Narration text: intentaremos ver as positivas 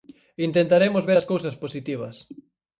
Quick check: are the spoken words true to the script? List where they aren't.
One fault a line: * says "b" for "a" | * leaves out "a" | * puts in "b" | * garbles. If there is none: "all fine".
* puts in "cousas"